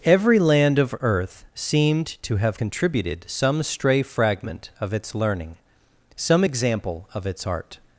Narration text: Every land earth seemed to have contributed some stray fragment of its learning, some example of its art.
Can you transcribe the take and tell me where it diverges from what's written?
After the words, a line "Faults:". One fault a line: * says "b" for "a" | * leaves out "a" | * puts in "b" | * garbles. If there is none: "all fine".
Every land of earth seemed to have contributed some stray fragment of its learning, some example of its art.
Faults:
* puts in "of"